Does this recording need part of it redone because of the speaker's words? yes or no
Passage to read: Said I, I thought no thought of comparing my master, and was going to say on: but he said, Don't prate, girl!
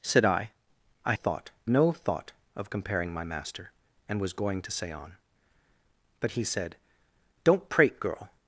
no